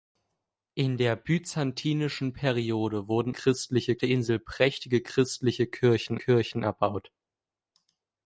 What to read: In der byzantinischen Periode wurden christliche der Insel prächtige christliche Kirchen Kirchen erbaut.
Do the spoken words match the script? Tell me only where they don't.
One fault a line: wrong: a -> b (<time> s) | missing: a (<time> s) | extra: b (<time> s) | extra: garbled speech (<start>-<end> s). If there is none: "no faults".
no faults